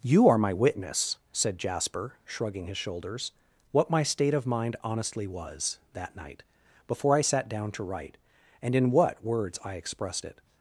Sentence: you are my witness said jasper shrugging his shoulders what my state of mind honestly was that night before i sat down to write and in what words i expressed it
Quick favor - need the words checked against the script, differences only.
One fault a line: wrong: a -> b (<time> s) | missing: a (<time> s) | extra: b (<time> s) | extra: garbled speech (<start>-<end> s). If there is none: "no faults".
no faults